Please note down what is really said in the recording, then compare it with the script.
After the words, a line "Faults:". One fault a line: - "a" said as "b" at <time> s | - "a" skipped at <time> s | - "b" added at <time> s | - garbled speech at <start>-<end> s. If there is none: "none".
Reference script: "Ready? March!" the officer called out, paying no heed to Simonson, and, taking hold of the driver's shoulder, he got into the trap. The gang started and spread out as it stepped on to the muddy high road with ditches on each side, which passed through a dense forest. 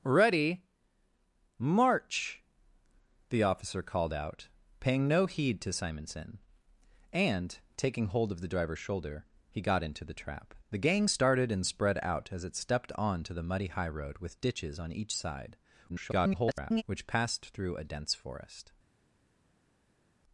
"Ready? March!" the officer called out, paying no heed to Simonson, and, taking hold of the driver's shoulder, he got into the trap. The gang started and spread out as it stepped on to the muddy high road with ditches on each side, [garbled] which passed through a dense forest.
Faults:
- garbled speech at 15.9-16.8 s